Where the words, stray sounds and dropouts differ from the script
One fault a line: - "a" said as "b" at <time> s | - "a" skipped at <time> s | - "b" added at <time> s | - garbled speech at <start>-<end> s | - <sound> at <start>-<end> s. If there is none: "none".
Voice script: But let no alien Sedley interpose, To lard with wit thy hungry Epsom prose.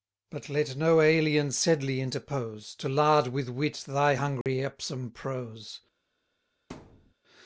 - dropout at 4.4-4.5 s
- thud at 6.7-7.1 s